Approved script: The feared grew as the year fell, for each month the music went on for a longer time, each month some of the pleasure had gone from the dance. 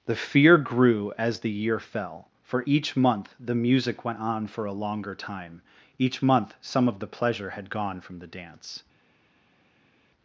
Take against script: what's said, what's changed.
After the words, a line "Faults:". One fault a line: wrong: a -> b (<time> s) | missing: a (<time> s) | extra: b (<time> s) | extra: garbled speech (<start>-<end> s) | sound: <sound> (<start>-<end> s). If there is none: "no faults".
The fear grew as the year fell, for each month the music went on for a longer time, each month some of the pleasure had gone from the dance.
Faults:
wrong: feared -> fear (0.1 s)